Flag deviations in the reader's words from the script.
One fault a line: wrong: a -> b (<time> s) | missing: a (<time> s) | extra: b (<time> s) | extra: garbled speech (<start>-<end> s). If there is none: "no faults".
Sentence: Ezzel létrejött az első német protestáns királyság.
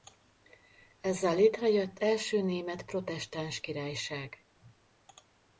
missing: az (2.0 s)